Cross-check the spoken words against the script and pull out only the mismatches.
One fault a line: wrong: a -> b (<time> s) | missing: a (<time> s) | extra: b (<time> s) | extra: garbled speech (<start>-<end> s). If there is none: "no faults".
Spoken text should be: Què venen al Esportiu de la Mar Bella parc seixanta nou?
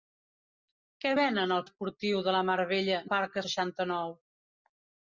no faults